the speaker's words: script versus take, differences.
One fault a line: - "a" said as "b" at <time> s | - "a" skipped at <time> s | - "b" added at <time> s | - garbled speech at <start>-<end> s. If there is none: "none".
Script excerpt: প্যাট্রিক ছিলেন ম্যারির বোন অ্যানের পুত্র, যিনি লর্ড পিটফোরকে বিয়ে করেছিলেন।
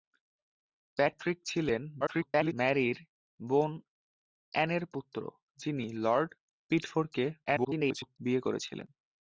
- garbled speech at 2.0-2.5 s
- garbled speech at 7.5-8.2 s